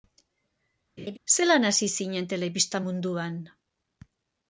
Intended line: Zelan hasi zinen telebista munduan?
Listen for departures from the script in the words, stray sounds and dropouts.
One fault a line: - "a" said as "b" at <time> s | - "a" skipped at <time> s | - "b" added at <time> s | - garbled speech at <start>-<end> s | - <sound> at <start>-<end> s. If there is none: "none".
- laugh at 1.0-1.2 s